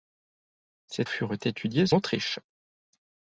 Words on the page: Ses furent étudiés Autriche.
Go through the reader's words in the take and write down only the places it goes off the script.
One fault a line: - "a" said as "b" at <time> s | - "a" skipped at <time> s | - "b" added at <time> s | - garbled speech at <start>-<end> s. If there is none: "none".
none